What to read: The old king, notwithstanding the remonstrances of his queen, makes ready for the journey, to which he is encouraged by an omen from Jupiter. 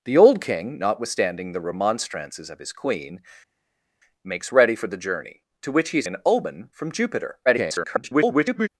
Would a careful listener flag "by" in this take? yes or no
yes